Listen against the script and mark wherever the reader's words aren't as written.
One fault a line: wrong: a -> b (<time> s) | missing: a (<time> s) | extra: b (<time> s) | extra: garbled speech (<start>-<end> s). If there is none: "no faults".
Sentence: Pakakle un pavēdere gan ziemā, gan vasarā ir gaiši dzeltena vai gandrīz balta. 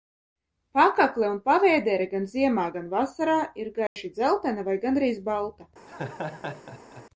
no faults